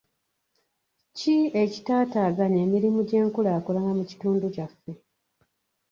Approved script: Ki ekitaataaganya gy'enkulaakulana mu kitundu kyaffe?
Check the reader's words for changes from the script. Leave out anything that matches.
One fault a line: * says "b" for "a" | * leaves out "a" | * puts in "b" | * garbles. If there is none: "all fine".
* puts in "emirimu"